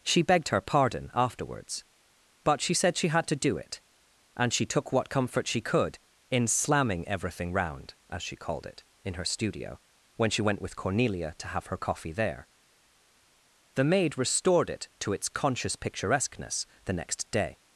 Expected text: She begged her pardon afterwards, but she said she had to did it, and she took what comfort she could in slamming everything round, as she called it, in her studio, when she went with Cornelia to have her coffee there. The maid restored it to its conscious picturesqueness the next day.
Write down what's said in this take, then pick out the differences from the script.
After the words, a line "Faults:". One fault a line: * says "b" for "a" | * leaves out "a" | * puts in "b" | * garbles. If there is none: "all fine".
She begged her pardon afterwards, but she said she had to do it, and she took what comfort she could in slamming everything round, as she called it, in her studio, when she went with Cornelia to have her coffee there. The maid restored it to its conscious picturesqueness the next day.
Faults:
* says "do" for "did"